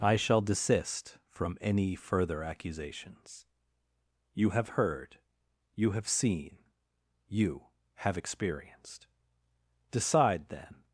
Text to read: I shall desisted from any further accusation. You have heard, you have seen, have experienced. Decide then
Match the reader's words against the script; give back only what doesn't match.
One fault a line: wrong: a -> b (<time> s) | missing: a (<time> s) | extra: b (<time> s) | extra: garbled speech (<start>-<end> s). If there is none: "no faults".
wrong: desisted -> desist (0.4 s)
wrong: accusation -> accusations (2.4 s)
extra: you (7.3 s)